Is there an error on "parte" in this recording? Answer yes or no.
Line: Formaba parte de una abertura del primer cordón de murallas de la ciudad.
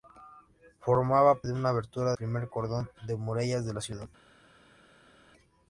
yes